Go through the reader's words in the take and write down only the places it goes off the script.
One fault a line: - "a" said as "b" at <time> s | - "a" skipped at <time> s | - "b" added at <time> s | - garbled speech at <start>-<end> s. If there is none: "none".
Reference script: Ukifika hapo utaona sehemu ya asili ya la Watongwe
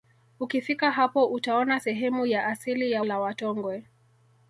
none